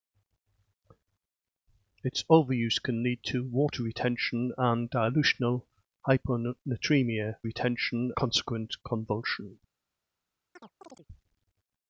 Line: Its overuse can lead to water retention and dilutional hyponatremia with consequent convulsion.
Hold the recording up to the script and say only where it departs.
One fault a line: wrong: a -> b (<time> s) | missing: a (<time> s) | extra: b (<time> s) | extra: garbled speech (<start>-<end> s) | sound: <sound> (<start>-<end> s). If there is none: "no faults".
wrong: with -> retention (7.4 s)
sound: chirp (10.6-11.1 s)